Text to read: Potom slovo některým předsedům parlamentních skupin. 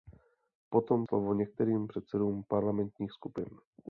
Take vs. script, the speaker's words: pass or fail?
pass